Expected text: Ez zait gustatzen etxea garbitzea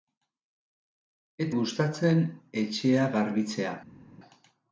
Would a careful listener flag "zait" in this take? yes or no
yes